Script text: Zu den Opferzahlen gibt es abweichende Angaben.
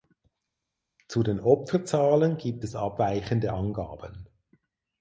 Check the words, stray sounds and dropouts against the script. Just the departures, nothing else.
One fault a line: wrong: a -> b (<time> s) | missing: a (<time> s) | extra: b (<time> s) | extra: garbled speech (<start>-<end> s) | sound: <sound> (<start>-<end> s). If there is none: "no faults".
no faults